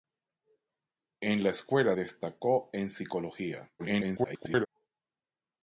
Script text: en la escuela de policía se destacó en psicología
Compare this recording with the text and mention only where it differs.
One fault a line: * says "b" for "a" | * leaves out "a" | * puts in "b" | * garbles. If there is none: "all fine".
* leaves out "de policía se"
* garbles